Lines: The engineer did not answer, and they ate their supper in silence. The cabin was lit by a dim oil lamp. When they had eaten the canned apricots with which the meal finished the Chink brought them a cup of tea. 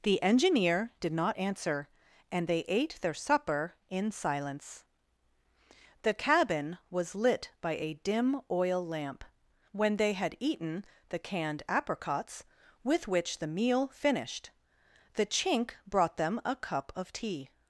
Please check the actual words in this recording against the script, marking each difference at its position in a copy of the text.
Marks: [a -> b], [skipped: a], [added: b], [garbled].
The engineer did not answer, and they ate their supper in silence. The cabin was lit by a dim oil lamp. When they had eaten the canned apricots with which the meal finished the Chink brought them a cup of tea.